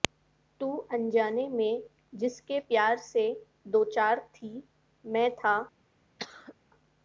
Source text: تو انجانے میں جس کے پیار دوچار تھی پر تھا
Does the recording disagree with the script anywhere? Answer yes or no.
yes